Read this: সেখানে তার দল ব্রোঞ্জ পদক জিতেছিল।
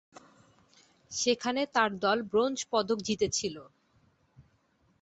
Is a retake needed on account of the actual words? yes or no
no